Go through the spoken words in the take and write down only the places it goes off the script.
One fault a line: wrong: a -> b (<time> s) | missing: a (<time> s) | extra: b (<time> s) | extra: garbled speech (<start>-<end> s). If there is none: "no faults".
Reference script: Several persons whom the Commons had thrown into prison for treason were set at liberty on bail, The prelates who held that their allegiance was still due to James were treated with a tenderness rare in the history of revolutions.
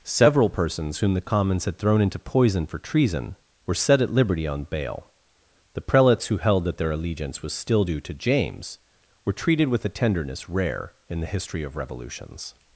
wrong: prison -> poison (2.2 s)